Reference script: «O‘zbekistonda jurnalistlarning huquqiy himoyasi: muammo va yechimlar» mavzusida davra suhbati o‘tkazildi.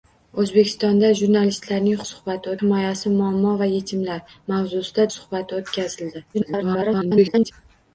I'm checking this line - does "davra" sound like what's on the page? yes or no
no